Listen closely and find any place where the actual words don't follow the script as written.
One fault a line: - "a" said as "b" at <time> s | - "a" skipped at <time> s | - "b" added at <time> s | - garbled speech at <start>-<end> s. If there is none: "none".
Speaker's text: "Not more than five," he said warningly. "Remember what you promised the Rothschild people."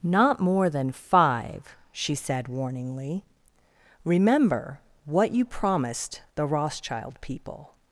- "he" said as "she" at 1.9 s